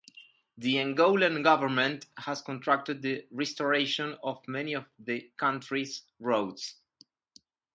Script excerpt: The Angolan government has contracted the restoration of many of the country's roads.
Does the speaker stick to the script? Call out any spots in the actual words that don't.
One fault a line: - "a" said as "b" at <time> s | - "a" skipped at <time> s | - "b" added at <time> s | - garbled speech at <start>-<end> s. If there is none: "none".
none